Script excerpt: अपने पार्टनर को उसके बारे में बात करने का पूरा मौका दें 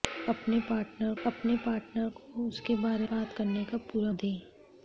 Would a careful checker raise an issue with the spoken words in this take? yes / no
yes